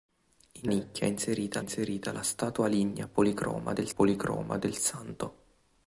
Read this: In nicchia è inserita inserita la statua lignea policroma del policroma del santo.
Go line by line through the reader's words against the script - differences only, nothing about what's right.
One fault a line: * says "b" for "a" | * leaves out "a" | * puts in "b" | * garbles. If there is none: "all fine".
all fine